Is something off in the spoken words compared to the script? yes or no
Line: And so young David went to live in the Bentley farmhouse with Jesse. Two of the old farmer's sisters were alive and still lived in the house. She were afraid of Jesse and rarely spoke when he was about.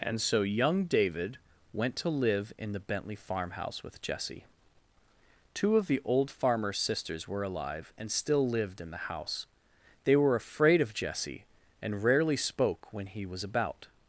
yes